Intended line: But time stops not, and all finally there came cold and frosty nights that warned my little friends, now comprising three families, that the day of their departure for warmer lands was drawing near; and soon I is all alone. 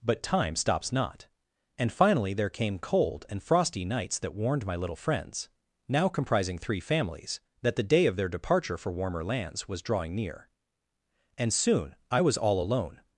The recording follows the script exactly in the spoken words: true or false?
false